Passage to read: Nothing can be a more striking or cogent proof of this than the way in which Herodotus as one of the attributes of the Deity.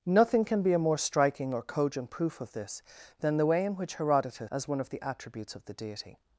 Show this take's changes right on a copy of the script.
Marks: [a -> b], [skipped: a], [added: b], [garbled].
Nothing can be a more striking or cogent proof of this than the way in which Herodotus as one of the attributes of the Deity.